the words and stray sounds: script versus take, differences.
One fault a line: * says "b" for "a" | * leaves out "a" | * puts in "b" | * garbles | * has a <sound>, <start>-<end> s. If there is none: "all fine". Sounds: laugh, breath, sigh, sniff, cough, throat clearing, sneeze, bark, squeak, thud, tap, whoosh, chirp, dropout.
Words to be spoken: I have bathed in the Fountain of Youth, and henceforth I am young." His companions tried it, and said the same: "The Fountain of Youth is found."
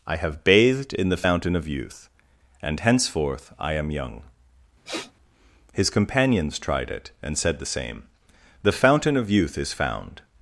* has a sniff, 4.9-5.1 s